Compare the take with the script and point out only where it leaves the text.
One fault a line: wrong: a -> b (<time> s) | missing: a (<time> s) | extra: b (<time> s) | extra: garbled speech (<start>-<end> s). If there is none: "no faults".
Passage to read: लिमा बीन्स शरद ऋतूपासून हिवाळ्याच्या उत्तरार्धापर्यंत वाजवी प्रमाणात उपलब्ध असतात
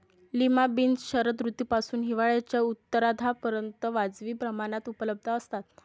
no faults